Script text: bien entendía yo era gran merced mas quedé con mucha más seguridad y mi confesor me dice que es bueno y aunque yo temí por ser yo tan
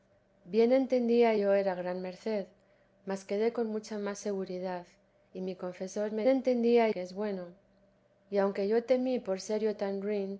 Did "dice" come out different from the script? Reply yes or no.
yes